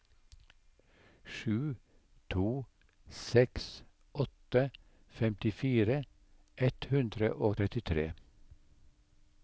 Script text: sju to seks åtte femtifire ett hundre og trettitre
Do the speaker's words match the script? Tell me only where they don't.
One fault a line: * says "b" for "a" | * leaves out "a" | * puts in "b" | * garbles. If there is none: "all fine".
all fine